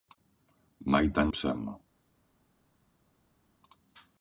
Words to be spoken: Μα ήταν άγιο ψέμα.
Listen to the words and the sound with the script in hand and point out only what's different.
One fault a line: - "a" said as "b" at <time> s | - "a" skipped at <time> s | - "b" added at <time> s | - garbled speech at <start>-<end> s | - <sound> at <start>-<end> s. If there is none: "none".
- "άγιο" skipped at 1.3 s